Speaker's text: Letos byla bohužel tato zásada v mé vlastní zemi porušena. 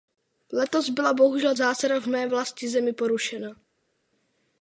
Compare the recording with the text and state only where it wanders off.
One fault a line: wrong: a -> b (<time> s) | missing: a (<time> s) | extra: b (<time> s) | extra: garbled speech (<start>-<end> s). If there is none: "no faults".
missing: tato (1.6 s)